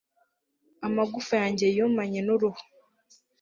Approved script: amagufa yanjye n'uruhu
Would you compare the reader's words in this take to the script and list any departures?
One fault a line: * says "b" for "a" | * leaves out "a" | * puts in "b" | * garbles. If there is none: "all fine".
* puts in "yumanye"